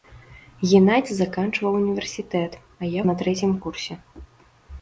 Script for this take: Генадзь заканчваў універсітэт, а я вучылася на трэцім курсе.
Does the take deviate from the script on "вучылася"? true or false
true